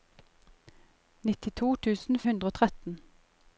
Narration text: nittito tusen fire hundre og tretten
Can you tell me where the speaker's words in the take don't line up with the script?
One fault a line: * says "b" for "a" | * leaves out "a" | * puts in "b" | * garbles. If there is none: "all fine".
* leaves out "fire"